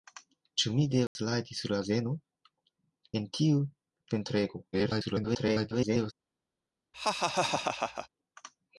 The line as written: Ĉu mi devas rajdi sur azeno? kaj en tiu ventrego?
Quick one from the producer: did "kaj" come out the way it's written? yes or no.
no